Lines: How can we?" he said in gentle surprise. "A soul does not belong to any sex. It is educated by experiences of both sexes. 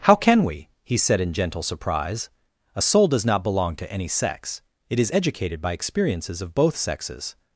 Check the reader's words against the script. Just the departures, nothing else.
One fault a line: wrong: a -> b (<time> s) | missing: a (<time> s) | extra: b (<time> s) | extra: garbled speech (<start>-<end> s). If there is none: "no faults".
no faults